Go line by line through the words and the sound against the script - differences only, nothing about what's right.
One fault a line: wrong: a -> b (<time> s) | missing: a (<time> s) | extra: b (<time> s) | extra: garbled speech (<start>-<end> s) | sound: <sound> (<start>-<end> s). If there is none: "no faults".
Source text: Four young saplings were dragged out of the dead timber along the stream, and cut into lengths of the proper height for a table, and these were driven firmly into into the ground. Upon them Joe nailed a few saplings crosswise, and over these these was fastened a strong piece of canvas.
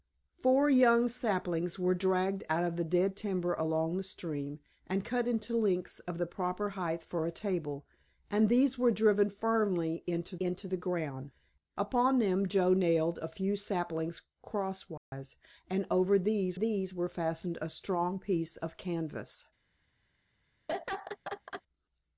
sound: dropout (15.0-15.1 s)
sound: laugh (20.7-21.6 s)